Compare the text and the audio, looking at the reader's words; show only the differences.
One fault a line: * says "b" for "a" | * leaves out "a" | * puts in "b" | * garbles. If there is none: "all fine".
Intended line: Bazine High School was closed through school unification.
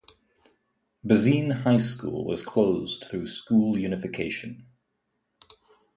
all fine